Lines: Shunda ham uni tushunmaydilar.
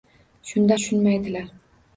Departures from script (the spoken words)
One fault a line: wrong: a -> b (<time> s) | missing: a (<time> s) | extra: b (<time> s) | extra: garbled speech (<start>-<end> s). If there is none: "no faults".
missing: ham uni (0.8 s)